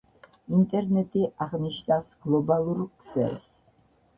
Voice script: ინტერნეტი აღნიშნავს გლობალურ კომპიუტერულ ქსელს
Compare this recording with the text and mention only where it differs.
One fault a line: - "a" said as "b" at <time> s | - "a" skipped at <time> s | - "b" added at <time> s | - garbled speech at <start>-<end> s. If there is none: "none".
- "კომპიუტერულ" skipped at 2.8 s